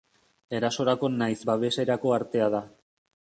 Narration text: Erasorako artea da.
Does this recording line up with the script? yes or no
no